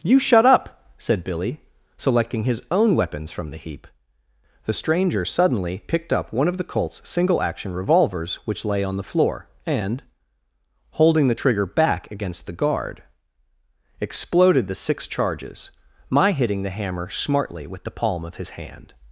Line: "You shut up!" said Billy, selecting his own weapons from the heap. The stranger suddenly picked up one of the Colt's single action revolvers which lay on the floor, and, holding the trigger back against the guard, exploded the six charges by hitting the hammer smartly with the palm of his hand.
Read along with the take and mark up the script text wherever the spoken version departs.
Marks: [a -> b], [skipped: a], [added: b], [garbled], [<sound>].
"You shut up!" said Billy, selecting his own weapons from the heap. The stranger suddenly picked up one of the Colt's single action revolvers which lay on the floor, and, holding the trigger back against the guard, exploded the six charges [by -> my] hitting the hammer smartly with the palm of his hand.